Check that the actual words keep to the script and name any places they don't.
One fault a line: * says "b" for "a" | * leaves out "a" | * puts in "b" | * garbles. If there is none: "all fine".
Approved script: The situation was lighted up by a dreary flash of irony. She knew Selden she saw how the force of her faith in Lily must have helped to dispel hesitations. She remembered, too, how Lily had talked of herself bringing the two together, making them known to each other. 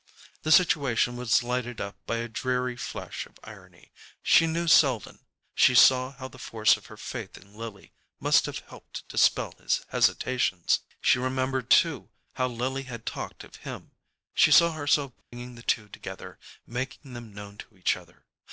* puts in "his"
* puts in "him she saw"